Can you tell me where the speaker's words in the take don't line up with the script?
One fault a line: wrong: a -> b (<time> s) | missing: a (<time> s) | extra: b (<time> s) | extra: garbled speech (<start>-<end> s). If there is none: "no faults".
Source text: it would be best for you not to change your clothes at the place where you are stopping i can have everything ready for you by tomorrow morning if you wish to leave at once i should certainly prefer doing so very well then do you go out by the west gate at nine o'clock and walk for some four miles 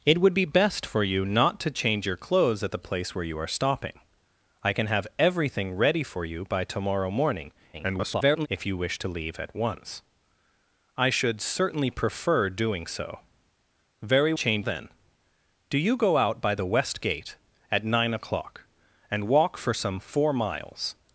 extra: garbled speech (7.7-8.5 s)
wrong: well -> change (14.3 s)